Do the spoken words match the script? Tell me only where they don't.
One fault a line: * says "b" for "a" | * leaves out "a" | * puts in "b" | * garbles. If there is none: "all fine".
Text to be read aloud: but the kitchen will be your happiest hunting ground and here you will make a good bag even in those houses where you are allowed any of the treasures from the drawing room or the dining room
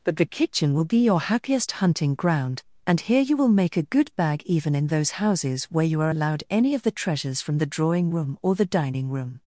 all fine